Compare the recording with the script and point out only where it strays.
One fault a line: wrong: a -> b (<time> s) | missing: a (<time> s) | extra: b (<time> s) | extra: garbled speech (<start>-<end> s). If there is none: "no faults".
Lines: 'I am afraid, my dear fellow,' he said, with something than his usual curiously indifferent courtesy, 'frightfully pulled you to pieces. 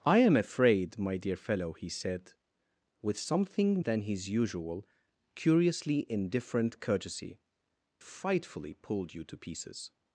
no faults